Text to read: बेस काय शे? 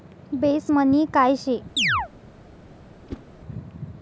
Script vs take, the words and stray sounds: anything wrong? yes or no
yes